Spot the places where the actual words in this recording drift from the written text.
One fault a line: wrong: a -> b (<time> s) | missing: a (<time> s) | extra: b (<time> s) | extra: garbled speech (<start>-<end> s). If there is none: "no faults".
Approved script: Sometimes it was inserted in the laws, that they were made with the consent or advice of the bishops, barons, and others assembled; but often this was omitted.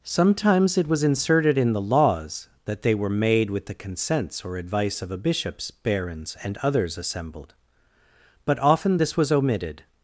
wrong: consent -> consents (3.7 s)
wrong: the -> a (5.1 s)